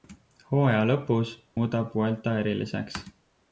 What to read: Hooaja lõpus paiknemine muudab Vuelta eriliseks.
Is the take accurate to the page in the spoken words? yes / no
no